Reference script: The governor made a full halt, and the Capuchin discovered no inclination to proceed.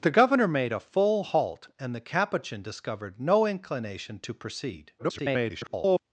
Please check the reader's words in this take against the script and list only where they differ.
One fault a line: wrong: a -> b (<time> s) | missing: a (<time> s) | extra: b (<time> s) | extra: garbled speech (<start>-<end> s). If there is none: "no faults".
extra: garbled speech (5.0-6.0 s)